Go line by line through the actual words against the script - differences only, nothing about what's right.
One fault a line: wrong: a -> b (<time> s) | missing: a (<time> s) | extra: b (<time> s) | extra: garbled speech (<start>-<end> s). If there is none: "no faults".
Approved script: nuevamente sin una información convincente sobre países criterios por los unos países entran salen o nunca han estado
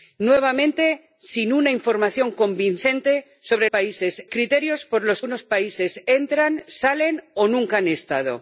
no faults